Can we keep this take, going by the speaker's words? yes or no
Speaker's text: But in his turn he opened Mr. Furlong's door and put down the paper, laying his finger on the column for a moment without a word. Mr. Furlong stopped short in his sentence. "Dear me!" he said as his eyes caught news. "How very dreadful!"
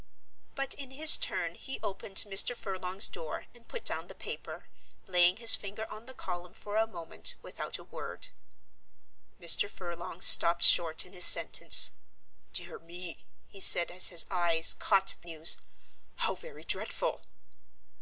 yes